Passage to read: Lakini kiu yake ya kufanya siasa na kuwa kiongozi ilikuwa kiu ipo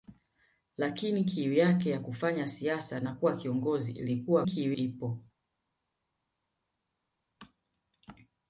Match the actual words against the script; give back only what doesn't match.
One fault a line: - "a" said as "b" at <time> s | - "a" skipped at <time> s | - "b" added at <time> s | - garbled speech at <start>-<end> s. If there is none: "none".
none